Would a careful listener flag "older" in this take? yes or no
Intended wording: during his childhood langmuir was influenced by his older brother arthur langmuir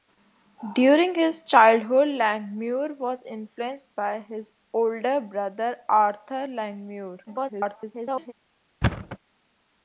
no